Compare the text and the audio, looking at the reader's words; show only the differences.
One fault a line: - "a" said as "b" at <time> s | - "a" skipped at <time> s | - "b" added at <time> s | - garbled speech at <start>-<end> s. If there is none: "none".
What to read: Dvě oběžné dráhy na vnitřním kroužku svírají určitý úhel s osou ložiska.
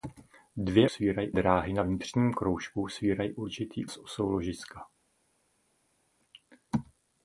- "oběžné" said as "svírají" at 0.9 s
- "úhel" skipped at 3.9 s